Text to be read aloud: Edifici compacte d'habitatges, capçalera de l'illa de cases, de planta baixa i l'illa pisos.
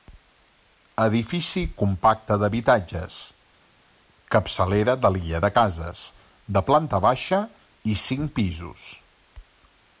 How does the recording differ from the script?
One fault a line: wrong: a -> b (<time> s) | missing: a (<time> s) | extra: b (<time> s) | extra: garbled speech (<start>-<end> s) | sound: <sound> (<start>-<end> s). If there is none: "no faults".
wrong: l'illa -> cinc (8.1 s)